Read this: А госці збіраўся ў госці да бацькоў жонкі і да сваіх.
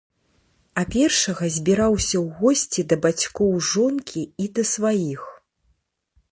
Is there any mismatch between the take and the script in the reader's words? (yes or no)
yes